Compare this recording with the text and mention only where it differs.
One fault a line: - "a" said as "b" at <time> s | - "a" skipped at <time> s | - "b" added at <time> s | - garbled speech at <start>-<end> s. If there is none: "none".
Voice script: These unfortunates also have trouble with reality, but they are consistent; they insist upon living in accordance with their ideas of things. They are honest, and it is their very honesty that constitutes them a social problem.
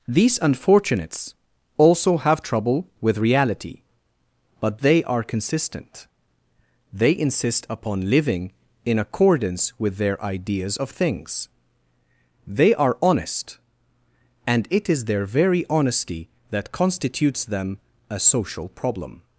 none